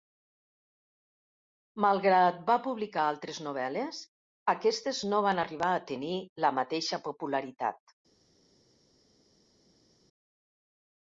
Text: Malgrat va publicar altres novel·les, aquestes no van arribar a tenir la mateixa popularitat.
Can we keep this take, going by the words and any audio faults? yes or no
yes